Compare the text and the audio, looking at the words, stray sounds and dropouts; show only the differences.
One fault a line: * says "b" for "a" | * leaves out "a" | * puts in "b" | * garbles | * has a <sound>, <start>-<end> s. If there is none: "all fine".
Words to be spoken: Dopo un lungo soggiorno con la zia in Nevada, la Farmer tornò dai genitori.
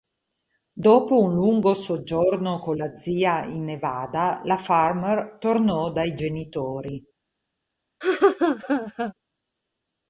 * has a laugh, 8.0-9.1 s